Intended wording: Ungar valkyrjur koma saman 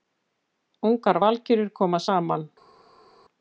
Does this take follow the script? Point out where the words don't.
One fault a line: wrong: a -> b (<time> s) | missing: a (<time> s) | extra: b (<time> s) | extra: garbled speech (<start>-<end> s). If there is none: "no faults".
no faults